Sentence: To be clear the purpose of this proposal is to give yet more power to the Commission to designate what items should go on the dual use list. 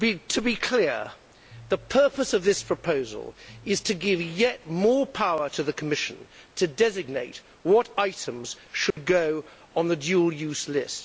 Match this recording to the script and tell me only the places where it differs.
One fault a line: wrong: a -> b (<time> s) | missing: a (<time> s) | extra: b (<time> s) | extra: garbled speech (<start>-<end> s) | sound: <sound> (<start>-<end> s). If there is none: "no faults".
sound: dropout (8.9-9.0 s)